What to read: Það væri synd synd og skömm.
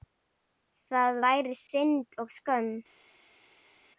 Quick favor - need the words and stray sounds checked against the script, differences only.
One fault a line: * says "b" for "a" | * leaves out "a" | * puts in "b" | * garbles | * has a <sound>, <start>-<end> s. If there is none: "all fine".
* leaves out "synd"